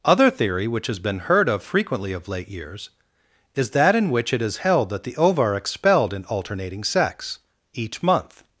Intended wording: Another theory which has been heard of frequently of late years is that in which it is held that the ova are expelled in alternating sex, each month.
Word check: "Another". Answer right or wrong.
wrong